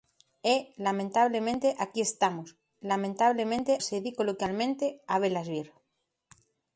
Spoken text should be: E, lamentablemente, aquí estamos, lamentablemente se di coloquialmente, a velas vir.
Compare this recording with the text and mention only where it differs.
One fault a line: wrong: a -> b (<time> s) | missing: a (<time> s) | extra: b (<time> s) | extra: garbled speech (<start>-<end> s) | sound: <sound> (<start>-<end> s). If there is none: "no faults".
no faults